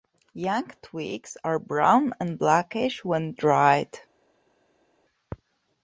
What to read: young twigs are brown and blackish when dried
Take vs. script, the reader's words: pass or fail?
pass